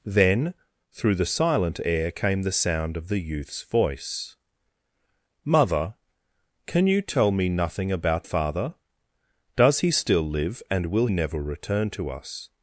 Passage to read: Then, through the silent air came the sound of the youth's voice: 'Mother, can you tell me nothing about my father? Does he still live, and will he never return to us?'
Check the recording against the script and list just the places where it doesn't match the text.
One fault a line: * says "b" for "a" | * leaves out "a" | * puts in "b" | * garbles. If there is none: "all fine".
* leaves out "my"
* leaves out "he"